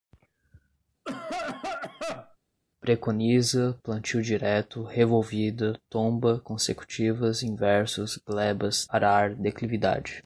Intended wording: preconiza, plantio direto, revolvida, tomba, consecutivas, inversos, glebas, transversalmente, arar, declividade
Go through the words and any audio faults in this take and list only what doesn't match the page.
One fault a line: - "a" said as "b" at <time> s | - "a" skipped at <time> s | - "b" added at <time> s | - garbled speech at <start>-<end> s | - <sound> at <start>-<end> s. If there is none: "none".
- cough at 1.0-2.4 s
- "transversalmente" skipped at 8.9 s